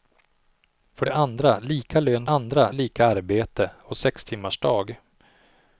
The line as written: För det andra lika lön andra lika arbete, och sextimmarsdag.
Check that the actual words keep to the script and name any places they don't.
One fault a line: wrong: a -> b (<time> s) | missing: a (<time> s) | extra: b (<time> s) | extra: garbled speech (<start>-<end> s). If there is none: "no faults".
no faults